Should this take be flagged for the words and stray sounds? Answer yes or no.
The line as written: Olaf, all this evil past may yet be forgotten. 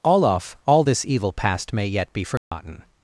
yes